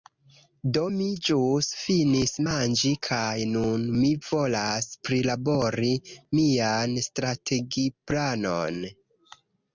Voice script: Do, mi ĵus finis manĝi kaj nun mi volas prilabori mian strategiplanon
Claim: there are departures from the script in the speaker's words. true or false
false